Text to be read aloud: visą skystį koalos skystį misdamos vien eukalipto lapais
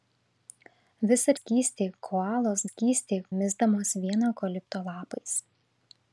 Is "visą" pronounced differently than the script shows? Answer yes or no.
no